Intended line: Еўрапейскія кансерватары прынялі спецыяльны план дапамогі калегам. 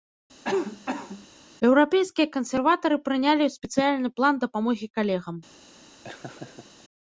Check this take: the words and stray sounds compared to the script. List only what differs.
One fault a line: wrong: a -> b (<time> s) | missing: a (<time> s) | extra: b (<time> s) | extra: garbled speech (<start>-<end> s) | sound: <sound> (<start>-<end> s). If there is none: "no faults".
sound: cough (0.4-1.3 s)
sound: laugh (6.0-6.8 s)